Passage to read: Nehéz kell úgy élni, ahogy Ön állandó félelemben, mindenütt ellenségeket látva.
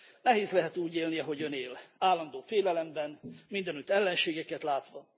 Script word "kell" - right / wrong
wrong